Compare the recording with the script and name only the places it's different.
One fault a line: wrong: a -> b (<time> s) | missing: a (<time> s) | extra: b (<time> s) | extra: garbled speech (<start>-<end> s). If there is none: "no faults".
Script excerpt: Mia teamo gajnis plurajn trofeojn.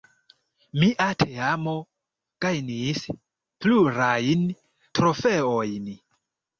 no faults